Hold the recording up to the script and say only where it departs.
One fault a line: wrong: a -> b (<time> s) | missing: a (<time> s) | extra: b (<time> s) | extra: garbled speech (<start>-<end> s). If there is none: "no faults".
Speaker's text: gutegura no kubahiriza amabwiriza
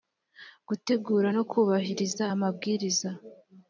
no faults